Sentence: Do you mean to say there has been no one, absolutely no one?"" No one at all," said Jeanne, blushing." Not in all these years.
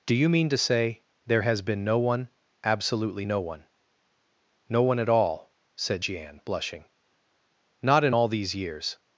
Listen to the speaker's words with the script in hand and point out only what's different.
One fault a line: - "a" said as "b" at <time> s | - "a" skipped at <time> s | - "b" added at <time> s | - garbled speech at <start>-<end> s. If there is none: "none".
none